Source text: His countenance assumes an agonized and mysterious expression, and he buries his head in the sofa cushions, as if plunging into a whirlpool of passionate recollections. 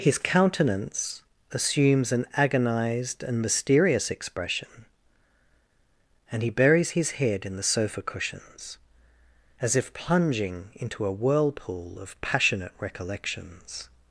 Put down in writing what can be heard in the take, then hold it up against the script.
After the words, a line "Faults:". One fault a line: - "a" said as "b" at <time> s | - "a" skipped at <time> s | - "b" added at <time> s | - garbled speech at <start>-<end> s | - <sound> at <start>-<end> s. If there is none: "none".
His countenance assumes an agonized and mysterious expression, and he buries his head in the sofa cushions, as if plunging into a whirlpool of passionate recollections.
Faults:
none